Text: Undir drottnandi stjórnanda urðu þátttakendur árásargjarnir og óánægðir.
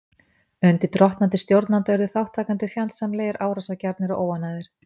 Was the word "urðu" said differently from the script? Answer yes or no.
no